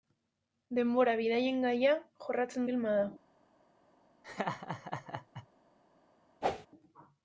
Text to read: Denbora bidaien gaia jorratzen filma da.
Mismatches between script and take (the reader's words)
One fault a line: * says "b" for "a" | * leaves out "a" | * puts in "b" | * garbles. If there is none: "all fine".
all fine